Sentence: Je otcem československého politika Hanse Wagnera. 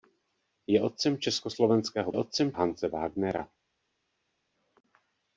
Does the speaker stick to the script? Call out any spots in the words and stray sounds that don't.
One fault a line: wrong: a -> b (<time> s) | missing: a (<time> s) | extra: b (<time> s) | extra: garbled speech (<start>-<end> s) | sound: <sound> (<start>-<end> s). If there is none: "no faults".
wrong: politika -> otcem (2.2 s)